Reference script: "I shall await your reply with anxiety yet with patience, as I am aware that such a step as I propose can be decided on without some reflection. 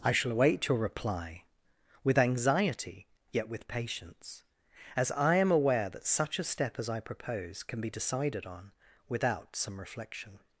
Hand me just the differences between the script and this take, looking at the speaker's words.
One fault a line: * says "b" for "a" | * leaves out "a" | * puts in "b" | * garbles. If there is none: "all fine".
all fine